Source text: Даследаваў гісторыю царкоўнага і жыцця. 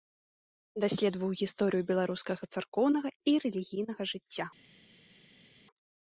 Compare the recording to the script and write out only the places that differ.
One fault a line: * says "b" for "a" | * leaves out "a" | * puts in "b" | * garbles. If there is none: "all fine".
* puts in "беларускага"
* puts in "рэлігійнага"